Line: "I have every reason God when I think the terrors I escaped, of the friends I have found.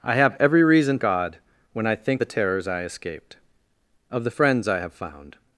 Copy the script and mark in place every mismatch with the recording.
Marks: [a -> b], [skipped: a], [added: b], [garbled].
"I have every reason God when I think the terrors I escaped, of the friends I have found.